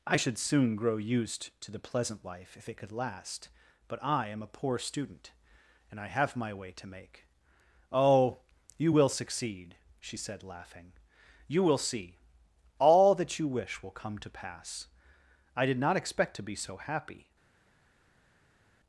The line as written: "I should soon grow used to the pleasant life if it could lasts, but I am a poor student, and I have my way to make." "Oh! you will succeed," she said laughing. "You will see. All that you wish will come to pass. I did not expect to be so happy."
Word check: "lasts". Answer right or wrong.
wrong